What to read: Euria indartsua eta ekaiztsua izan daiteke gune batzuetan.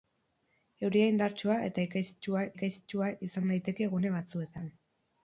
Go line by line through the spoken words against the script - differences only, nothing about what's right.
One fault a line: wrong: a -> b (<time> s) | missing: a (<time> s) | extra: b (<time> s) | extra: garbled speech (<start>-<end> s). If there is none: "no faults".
extra: ekaiztsua (2.6 s)